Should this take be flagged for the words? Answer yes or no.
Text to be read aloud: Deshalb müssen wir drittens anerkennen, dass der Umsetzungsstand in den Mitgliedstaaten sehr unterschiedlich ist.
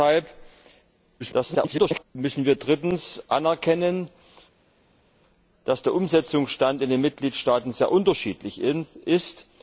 yes